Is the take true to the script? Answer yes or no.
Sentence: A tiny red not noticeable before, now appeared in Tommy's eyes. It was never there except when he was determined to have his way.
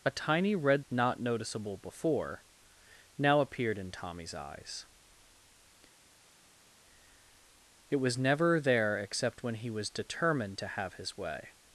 yes